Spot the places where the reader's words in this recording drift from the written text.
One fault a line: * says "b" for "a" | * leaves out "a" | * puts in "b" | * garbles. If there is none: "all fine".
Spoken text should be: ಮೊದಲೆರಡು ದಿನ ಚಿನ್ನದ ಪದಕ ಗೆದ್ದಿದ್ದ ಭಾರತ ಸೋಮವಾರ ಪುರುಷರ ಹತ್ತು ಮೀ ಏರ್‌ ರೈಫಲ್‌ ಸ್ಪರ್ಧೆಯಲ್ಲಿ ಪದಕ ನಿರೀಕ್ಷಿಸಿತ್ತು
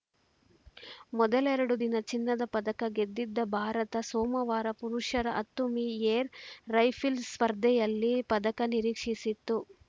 all fine